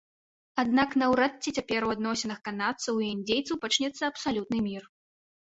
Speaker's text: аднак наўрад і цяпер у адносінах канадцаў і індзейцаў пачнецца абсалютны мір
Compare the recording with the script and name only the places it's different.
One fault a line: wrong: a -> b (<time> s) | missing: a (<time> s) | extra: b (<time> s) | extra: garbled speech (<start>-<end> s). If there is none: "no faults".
wrong: і -> ці (1.4 s)